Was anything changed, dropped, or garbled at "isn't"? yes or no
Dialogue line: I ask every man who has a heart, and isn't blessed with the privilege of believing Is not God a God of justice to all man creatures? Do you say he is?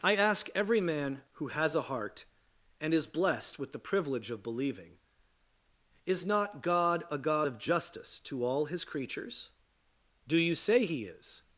yes